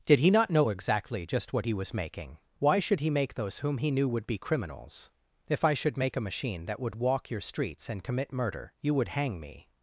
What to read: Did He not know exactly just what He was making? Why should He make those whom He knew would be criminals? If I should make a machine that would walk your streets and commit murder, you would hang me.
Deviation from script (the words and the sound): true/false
false